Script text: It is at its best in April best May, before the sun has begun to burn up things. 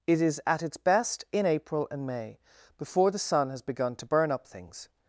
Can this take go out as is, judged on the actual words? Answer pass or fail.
fail